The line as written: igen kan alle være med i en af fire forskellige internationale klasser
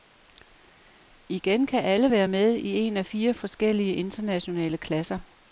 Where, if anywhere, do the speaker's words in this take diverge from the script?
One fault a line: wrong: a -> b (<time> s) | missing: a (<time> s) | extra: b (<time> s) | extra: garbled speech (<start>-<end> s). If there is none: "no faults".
no faults